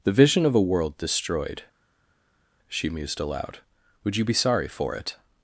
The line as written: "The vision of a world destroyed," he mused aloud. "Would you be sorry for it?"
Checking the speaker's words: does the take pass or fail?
fail